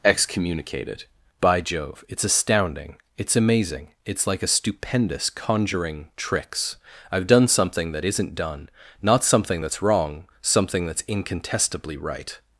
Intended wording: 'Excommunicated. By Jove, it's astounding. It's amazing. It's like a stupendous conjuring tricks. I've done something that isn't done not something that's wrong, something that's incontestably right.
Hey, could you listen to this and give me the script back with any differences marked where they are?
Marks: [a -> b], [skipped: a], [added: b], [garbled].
'Excommunicated. By Jove, it's astounding. It's amazing. It's like a stupendous conjuring tricks. I've done something that isn't done not something that's wrong, something that's incontestably right.